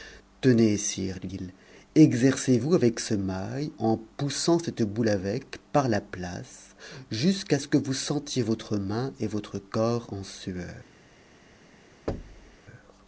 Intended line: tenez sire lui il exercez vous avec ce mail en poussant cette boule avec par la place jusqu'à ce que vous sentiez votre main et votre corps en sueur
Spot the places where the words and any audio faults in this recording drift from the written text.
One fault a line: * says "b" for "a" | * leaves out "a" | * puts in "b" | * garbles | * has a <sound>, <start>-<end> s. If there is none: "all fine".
* has a thud, 12.1-12.6 s